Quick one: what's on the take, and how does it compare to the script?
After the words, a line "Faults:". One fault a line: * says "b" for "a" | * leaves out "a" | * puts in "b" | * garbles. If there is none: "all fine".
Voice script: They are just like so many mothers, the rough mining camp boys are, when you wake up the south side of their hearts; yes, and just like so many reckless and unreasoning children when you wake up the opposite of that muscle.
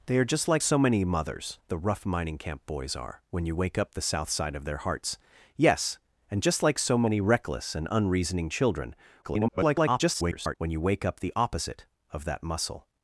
They are just like so many mothers, the rough mining camp boys are, when you wake up the south side of their hearts; yes, and just like so many reckless and unreasoning children [garbled] when you wake up the opposite of that muscle.
Faults:
* garbles